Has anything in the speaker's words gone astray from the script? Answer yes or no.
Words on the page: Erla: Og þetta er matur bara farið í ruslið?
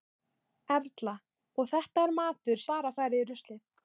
no